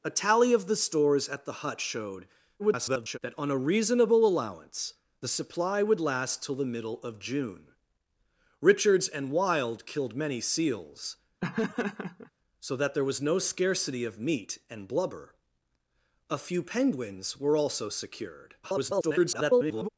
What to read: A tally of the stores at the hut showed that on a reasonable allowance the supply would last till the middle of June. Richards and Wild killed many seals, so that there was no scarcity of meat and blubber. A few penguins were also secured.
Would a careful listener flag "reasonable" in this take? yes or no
no